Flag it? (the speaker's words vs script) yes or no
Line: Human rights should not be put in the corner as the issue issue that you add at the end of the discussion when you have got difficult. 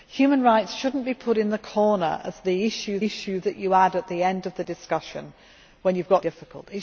no